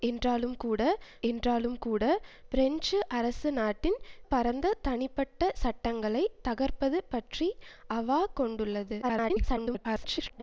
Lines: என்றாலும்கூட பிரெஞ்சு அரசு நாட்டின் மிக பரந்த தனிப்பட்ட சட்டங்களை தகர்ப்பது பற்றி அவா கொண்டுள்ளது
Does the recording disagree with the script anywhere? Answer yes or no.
yes